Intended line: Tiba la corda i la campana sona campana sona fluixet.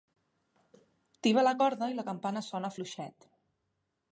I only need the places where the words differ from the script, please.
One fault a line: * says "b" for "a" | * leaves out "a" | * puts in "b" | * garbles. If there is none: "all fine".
* leaves out "campana sona"